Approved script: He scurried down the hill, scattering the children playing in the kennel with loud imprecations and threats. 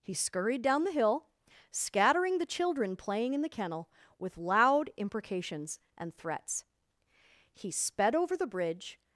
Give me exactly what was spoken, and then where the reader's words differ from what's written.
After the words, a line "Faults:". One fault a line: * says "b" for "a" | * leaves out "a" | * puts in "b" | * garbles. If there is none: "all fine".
He scurried down the hill, scattering the children playing in the kennel with loud imprecations and threats. He sped over the bridge
Faults:
* puts in "He sped over the bridge"